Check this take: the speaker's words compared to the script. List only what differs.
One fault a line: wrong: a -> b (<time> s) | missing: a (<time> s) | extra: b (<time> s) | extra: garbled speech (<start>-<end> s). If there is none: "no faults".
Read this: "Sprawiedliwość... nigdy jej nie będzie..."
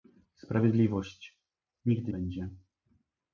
missing: jej nie (2.1 s)